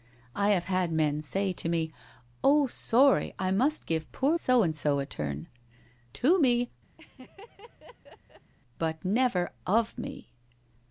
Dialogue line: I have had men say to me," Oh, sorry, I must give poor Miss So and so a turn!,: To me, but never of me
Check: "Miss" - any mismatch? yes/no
yes